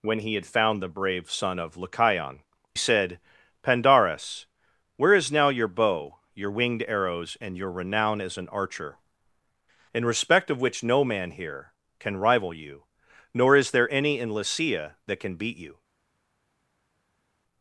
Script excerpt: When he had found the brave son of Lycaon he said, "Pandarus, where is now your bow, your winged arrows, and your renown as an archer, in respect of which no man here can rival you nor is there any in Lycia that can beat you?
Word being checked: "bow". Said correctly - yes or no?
yes